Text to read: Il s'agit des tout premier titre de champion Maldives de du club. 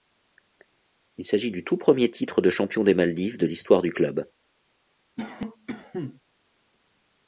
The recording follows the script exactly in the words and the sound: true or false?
false